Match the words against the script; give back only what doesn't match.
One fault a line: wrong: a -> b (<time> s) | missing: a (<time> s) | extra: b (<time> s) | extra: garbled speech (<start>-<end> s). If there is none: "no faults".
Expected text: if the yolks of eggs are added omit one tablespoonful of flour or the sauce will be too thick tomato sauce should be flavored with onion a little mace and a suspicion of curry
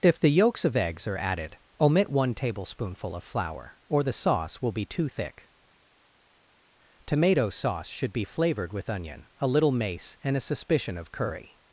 no faults